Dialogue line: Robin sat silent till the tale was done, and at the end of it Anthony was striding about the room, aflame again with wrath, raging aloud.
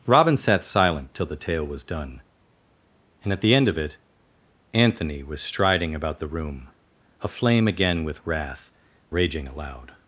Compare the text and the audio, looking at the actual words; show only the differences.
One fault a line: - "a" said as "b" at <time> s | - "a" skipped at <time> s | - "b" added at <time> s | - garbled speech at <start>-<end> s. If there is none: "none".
none